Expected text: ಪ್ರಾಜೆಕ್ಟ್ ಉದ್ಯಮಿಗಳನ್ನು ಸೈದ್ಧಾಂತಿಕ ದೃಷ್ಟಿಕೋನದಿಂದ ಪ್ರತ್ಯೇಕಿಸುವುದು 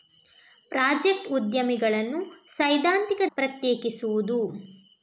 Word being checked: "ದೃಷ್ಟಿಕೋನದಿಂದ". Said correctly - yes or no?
no